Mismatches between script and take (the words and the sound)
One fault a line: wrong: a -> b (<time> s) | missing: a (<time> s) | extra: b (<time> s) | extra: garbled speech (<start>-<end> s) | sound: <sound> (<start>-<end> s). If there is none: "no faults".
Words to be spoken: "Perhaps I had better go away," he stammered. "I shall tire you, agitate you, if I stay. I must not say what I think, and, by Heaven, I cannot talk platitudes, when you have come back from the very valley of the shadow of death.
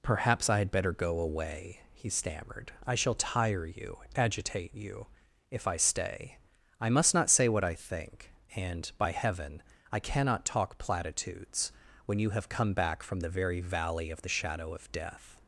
no faults